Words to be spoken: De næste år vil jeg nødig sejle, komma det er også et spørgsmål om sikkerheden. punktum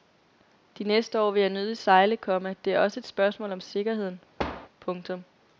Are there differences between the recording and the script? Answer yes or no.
no